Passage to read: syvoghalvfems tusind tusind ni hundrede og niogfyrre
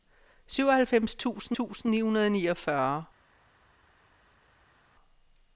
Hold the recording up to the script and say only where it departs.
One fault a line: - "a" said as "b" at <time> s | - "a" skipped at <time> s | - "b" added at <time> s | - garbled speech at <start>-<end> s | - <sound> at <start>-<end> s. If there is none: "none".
none